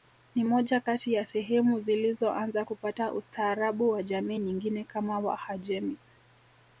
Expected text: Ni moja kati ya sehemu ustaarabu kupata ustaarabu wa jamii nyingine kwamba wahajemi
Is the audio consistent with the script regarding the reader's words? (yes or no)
no